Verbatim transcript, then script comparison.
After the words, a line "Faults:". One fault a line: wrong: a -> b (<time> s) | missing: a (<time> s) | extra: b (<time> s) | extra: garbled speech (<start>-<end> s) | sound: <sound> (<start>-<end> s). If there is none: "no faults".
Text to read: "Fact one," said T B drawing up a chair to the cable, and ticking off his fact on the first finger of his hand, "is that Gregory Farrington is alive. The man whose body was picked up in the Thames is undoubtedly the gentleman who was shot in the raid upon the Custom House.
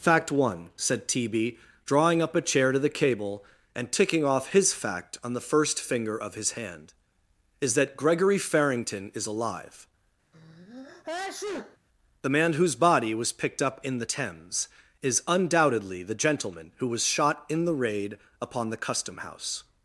"Fact one," said T B drawing up a chair to the cable, and ticking off his fact on the first finger of his hand, "is that Gregory Farrington is alive. The man whose body was picked up in the Thames is undoubtedly the gentleman who was shot in the raid upon the Custom House.
Faults:
sound: sneeze (10.3-11.8 s)